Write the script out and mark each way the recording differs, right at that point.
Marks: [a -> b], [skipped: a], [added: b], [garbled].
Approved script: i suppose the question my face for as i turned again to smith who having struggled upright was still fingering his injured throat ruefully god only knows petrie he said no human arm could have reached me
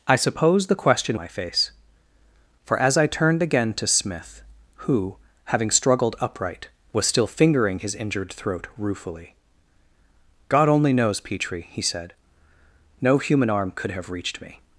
i suppose the question my face for as i turned again to smith who having struggled upright was still fingering his injured throat ruefully god only knows petrie he said no human arm could have reached me